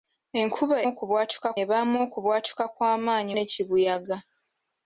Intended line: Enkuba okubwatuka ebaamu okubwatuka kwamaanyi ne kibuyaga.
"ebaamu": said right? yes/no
yes